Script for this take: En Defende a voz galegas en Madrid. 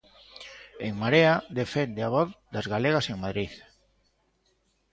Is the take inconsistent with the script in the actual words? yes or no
yes